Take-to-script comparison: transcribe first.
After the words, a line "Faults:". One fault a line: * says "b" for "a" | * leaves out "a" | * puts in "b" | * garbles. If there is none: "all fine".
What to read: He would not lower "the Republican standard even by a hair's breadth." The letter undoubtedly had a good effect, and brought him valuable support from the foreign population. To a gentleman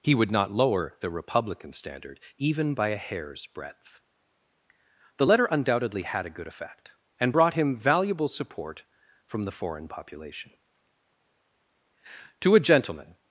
He would not lower "the Republican standard even by a hair's breadth." The letter undoubtedly had a good effect, and brought him valuable support from the foreign population. To a gentleman
Faults:
all fine